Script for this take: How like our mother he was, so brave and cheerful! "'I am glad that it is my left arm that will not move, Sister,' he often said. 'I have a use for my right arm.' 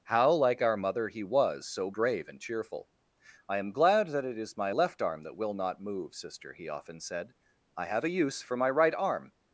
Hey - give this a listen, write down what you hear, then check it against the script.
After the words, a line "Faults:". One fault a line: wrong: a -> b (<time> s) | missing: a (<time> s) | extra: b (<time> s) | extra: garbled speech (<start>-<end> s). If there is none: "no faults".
How like our mother he was, so brave and cheerful! "'I am glad that it is my left arm that will not move, Sister,' he often said. 'I have a use for my right arm.'
Faults:
no faults